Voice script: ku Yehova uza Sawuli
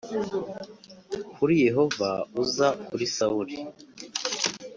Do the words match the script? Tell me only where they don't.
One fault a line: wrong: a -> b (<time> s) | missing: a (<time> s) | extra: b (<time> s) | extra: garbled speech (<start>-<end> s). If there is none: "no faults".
wrong: ku -> kuri (1.4 s)
extra: kuri (2.9 s)